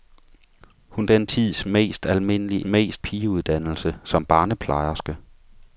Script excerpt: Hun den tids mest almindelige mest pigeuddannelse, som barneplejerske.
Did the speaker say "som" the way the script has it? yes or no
yes